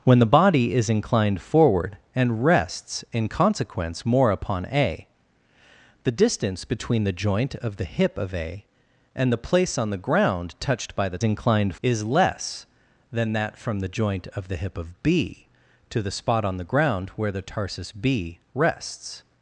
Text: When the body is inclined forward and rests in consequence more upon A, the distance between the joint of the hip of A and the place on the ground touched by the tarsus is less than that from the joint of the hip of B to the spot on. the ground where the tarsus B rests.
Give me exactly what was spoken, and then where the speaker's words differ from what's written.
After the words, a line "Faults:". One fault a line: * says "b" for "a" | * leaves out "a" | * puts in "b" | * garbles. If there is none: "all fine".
When the body is inclined forward and rests in consequence more upon A, the distance between the joint of the hip of A and the place on the ground touched by the inclined is less than that from the joint of the hip of B to the spot on. the ground where the tarsus B rests.
Faults:
* says "inclined" for "tarsus"